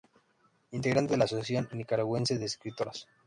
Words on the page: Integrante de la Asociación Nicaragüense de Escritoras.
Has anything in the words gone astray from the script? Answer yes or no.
no